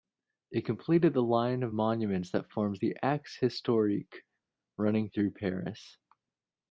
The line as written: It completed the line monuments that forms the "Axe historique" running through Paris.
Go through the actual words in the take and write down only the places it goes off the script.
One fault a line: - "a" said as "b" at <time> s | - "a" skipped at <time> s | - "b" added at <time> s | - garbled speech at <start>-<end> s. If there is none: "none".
- "of" added at 1.6 s